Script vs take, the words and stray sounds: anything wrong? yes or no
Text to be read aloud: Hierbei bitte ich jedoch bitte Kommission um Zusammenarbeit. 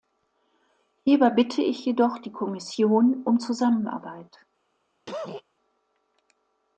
yes